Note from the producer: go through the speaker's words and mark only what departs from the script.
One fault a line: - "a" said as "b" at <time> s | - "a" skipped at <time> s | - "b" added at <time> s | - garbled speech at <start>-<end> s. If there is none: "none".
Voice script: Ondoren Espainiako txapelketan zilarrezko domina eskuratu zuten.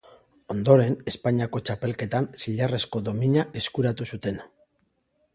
none